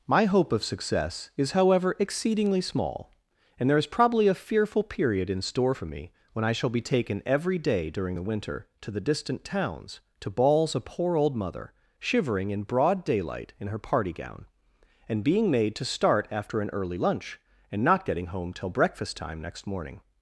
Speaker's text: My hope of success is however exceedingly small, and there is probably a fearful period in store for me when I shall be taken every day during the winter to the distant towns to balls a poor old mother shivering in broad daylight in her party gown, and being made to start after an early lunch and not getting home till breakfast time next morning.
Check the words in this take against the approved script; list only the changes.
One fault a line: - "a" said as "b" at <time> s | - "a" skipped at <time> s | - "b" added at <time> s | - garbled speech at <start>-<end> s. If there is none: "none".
none